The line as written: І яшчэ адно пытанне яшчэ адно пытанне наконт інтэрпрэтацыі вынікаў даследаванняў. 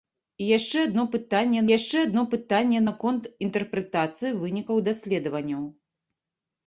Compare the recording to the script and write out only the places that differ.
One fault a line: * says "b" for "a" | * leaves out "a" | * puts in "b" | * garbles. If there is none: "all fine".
all fine